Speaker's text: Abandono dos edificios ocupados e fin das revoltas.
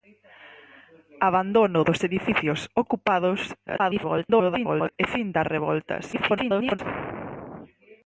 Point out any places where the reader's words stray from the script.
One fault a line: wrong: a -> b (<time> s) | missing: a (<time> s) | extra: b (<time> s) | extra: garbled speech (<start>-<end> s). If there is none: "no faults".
extra: garbled speech (3.7-5.0 s)
extra: garbled speech (6.1-6.8 s)